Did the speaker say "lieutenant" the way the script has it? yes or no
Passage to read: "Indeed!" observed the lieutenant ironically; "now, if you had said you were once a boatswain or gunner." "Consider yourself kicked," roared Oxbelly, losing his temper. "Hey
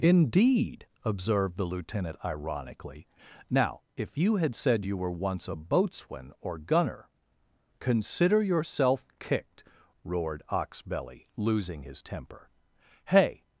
yes